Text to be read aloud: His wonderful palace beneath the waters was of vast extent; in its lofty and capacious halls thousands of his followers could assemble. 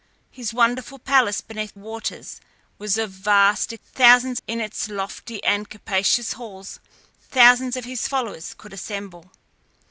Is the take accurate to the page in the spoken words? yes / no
no